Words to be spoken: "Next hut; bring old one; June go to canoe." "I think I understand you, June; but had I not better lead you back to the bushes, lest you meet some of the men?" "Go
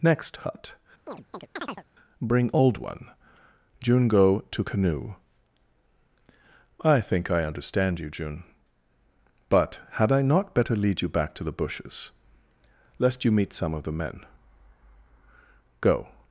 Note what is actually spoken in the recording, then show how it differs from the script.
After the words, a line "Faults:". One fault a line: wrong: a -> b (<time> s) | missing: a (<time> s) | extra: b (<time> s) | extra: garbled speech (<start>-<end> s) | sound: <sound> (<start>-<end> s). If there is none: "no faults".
"Next hut; bring old one; June go to canoe." "I think I understand you, June; but had I not better lead you back to the bushes, lest you meet some of the men?" "Go
Faults:
sound: chirp (1.1-1.8 s)